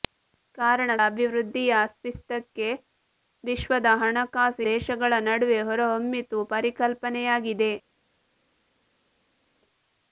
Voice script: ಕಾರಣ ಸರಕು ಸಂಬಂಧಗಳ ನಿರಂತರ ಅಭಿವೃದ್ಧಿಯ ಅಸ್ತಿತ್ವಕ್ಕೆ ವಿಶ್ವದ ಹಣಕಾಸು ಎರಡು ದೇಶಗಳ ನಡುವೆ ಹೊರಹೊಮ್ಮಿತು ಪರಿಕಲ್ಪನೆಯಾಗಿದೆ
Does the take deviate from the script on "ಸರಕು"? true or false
true